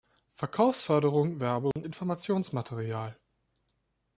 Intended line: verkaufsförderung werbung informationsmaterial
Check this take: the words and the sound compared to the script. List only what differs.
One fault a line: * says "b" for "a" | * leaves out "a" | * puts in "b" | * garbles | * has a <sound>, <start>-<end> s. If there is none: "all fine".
* has a dropout, 1.7-1.8 s